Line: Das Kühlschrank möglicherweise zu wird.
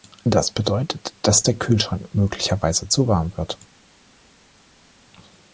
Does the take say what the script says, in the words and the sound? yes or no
no